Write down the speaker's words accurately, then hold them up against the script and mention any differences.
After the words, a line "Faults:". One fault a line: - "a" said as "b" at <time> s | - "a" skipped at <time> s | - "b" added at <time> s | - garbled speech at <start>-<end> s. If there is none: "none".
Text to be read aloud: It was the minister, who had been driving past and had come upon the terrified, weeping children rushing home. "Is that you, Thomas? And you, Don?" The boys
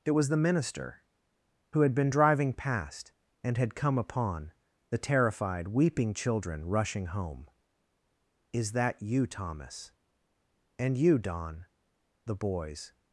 It was the minister, who had been driving past and had come upon the terrified, weeping children rushing home. "Is that you, Thomas? And you, Don?" The boys
Faults:
none